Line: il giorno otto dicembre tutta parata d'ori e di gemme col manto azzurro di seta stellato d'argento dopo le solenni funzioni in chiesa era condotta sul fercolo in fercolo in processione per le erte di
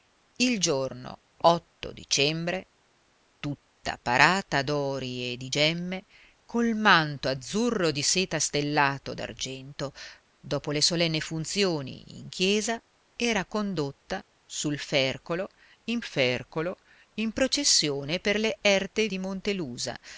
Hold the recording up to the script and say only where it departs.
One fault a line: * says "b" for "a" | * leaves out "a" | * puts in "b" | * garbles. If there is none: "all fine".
all fine